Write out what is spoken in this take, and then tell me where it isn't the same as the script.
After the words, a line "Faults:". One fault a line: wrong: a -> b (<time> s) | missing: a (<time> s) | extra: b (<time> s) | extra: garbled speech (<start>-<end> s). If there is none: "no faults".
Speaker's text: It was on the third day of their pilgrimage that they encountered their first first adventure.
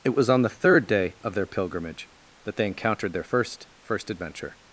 It was on the third day of their pilgrimage that they encountered their first first adventure.
Faults:
no faults